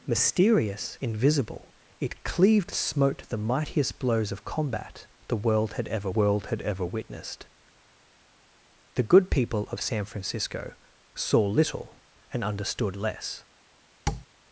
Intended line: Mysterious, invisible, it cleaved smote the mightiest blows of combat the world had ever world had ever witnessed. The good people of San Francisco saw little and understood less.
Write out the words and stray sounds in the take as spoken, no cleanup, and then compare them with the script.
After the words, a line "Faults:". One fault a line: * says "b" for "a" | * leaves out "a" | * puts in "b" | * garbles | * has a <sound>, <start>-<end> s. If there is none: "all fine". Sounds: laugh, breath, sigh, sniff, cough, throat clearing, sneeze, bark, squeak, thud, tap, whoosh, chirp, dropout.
Mysterious, invisible, it cleaved smote the mightiest blows of combat the world had ever world had ever witnessed. The good people of San Francisco saw little and understood less.
Faults:
* has a tap, 14.1-14.3 s